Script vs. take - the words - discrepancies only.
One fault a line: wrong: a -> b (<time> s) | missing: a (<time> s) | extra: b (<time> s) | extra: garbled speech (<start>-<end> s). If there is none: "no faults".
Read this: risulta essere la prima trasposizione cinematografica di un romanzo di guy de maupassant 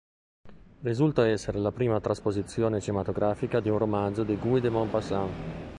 no faults